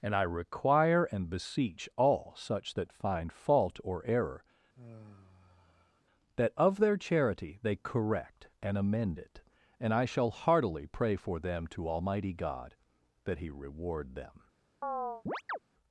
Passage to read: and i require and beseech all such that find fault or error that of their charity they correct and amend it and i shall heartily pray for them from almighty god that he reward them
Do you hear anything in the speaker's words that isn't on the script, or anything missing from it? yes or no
yes